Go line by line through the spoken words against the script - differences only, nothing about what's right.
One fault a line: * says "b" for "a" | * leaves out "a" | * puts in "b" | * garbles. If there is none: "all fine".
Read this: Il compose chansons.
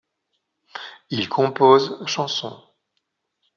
all fine